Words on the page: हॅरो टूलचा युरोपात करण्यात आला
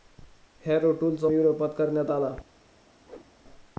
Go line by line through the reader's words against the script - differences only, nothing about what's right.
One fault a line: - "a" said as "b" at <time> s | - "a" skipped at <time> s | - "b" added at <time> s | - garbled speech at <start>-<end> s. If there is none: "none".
none